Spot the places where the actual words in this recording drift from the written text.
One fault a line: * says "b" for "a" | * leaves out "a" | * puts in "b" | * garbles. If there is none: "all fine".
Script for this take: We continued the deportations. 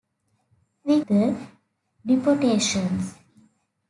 * leaves out "continued"